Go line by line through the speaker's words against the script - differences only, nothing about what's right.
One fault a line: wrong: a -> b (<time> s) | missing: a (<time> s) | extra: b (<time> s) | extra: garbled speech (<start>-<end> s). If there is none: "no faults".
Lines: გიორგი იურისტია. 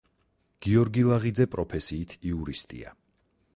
extra: ლაღიძე პროფესიით (1.1 s)